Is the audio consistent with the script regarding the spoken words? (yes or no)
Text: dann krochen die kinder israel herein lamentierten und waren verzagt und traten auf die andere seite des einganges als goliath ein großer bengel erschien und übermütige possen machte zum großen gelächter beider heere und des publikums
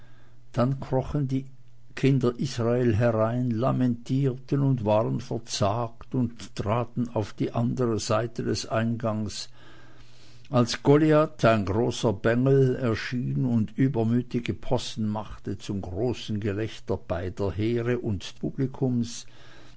no